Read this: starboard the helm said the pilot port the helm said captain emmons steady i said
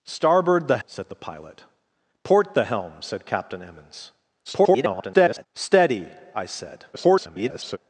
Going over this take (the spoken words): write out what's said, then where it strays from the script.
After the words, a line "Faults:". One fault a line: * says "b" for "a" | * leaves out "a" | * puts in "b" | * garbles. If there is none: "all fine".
starboard the said the pilot port the helm said captain emmons [garbled] steady i said [garbled]
Faults:
* leaves out "helm"
* garbles
* garbles